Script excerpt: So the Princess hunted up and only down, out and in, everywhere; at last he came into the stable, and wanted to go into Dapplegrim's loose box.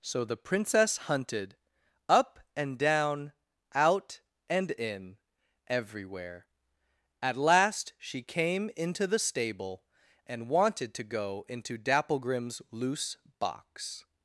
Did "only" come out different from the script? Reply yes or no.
yes